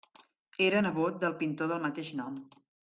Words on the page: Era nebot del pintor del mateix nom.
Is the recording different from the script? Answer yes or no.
no